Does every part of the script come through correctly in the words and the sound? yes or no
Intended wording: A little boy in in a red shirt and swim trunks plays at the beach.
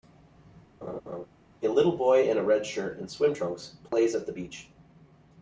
no